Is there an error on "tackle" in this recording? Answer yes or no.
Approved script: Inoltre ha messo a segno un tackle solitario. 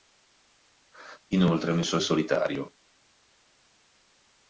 yes